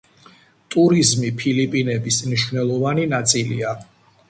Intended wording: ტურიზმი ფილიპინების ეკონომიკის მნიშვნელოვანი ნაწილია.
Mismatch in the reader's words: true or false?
true